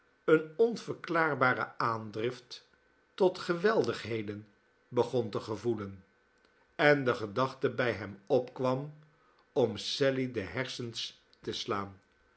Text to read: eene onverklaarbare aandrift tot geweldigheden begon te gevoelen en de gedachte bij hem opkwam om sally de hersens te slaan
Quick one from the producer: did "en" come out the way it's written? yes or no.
yes